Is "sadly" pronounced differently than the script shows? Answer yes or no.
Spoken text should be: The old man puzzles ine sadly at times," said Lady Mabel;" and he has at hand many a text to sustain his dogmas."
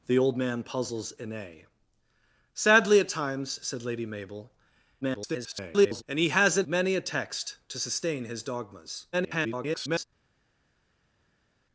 no